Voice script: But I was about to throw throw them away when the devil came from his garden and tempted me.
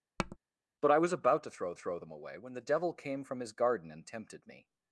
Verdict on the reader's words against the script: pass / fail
pass